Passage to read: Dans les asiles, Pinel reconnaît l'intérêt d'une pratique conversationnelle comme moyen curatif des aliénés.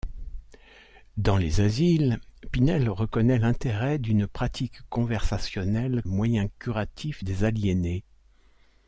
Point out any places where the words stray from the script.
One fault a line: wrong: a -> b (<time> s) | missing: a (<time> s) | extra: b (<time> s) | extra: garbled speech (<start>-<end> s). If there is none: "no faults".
missing: comme (6.0 s)